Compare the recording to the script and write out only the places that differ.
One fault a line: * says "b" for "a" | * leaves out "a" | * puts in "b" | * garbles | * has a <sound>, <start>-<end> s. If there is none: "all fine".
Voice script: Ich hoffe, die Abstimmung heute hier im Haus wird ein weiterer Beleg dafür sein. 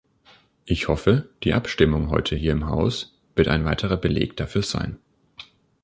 all fine